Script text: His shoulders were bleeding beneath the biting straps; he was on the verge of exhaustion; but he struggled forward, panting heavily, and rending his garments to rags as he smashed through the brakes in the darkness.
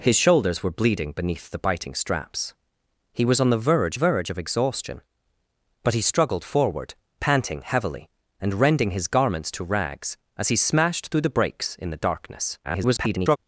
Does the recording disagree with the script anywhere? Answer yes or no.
yes